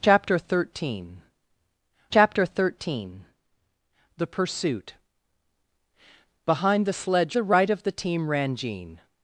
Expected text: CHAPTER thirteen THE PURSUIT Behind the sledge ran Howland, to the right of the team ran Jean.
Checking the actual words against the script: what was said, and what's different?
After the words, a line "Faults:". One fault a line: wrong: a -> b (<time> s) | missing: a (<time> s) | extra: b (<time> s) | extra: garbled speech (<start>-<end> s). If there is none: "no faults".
CHAPTER thirteen chapter thirteen THE PURSUIT Behind the sledge the right of the team ran Jean.
Faults:
extra: chapter thirteen (2.1 s)
missing: ran Howland to (7.4 s)